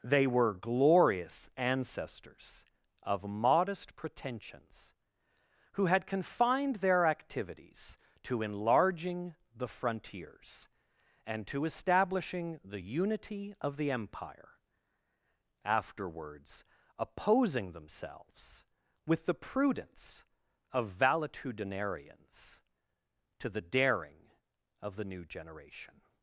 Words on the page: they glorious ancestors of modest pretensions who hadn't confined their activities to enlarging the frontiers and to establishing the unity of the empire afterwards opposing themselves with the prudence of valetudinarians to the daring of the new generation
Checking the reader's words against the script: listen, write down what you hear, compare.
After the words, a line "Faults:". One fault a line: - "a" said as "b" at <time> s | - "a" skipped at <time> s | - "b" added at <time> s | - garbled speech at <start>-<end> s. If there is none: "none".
they were glorious ancestors of modest pretensions who had confined their activities to enlarging the frontiers and to establishing the unity of the empire afterwards opposing themselves with the prudence of valetudinarians to the daring of the new generation
Faults:
- "were" added at 0.2 s
- "hadn't" said as "had" at 5.8 s